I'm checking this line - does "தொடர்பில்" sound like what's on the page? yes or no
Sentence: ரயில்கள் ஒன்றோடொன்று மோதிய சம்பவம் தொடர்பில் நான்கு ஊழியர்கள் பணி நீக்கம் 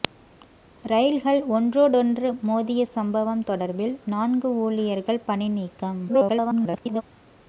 yes